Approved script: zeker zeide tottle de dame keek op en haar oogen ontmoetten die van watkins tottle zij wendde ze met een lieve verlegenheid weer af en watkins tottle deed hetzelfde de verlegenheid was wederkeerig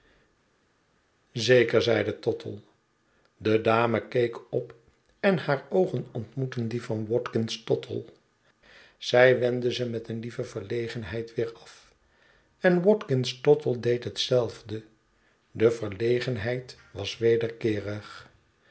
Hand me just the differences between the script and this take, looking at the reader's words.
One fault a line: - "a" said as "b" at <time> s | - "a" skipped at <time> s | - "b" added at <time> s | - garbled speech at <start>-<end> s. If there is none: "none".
none